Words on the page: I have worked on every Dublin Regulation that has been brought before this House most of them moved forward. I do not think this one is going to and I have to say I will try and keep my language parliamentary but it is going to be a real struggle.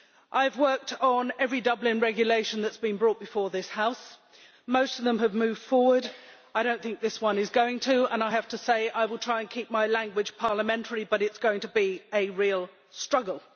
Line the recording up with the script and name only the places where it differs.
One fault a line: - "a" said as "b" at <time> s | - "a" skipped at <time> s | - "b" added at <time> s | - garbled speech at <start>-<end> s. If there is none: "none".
- "have" added at 5.2 s